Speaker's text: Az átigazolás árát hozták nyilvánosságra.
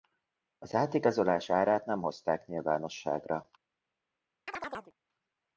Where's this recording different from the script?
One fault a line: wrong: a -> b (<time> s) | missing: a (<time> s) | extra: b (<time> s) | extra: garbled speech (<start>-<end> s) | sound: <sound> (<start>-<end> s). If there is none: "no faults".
extra: nem (1.9 s)
sound: chirp (4.5-4.9 s)